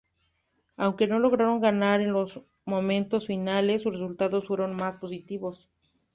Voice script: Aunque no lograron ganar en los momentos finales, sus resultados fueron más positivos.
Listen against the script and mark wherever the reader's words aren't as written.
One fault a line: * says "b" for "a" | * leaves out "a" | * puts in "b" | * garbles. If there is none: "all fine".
all fine